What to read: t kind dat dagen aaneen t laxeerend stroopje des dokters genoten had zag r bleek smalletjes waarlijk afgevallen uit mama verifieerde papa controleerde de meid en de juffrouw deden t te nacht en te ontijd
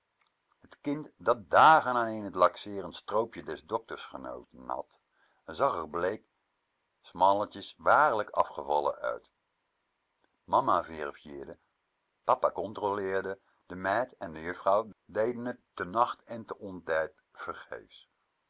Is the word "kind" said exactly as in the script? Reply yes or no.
yes